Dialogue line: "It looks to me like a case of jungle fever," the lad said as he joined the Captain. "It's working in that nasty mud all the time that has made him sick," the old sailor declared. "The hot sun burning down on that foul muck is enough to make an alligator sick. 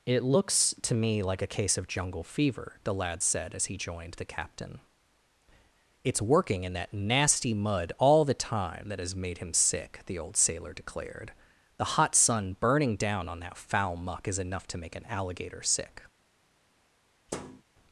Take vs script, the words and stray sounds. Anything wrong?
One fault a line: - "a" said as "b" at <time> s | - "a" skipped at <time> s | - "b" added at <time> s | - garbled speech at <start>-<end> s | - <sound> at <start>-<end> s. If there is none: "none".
- thud at 17.3-17.6 s